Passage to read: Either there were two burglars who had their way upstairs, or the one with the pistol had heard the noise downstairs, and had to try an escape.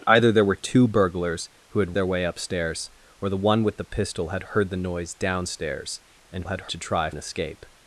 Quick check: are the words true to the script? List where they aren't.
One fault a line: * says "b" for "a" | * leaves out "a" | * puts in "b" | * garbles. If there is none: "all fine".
all fine